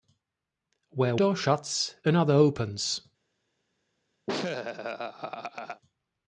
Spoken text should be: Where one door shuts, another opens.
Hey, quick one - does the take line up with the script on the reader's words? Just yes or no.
no